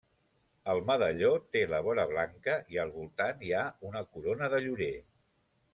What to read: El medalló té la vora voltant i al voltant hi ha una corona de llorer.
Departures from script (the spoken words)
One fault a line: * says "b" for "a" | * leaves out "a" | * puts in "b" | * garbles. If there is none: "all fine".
* says "blanca" for "voltant"